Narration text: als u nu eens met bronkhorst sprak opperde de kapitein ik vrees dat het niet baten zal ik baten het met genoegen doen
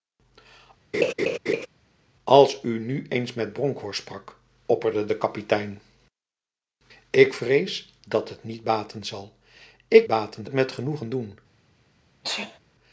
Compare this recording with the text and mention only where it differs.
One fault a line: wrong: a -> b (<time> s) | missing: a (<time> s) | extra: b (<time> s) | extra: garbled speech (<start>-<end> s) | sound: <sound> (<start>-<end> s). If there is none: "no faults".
sound: laugh (0.9-1.7 s)
sound: sneeze (12.2-12.6 s)